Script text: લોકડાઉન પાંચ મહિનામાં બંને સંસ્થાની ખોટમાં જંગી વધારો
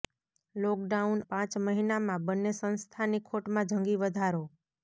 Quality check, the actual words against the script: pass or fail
pass